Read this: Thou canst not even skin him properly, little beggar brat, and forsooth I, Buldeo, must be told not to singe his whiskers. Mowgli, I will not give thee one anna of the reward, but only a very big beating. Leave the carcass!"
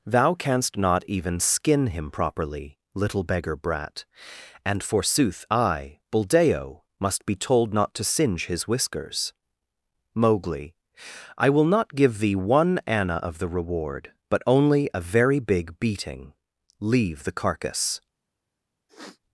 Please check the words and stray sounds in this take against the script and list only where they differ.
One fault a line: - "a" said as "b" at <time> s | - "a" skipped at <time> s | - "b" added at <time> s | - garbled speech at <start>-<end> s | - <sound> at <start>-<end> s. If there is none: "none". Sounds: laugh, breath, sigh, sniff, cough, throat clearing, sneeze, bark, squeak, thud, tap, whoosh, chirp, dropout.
- sniff at 18.9-19.2 s